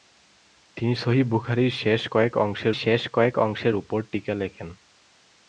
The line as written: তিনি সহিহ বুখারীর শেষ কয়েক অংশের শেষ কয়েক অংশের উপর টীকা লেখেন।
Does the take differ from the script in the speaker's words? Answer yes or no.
no